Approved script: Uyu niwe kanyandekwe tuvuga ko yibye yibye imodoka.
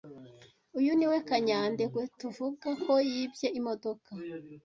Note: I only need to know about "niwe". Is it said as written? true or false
true